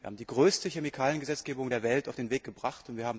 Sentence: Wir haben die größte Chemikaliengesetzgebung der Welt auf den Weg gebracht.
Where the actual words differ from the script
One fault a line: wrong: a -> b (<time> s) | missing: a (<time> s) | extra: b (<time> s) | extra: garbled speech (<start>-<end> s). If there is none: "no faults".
no faults